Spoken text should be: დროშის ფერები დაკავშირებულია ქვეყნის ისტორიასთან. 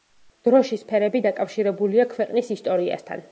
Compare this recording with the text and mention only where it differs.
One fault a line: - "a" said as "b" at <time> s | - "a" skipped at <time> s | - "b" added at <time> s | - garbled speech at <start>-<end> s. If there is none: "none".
none